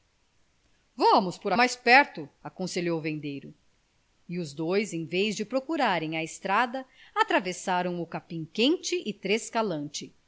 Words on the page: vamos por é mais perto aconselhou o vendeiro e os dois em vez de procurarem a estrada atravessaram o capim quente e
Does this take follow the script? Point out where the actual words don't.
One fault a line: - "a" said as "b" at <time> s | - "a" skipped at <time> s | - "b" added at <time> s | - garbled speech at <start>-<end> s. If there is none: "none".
none